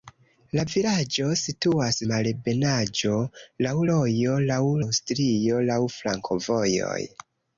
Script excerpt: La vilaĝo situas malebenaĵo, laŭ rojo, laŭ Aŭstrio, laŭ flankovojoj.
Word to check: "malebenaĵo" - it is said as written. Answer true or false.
true